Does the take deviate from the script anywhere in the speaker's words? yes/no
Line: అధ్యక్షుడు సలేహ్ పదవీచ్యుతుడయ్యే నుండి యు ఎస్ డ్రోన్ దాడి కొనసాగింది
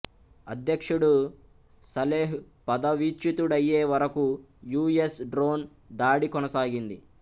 yes